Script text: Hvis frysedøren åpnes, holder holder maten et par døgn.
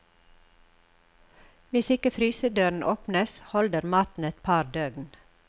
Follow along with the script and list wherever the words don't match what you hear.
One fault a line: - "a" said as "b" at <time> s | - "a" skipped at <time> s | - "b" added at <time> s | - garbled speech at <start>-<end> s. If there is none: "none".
- "ikke" added at 1.9 s
- "holder" skipped at 3.9 s